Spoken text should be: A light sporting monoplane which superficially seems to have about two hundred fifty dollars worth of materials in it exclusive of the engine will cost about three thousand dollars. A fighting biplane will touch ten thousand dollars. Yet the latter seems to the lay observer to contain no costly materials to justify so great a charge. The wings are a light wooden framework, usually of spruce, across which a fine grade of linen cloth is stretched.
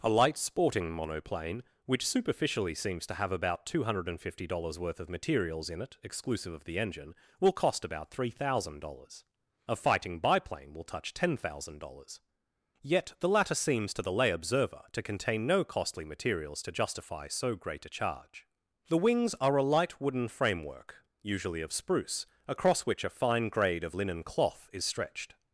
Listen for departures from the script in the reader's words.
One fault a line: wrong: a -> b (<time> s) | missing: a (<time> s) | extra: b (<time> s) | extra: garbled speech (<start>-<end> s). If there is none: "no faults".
no faults